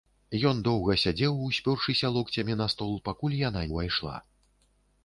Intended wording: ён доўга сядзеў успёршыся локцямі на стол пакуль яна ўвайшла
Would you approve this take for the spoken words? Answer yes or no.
yes